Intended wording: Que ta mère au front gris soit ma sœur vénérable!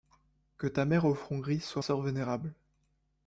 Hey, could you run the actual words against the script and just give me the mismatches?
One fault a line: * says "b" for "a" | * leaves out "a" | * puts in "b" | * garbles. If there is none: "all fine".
* leaves out "ma"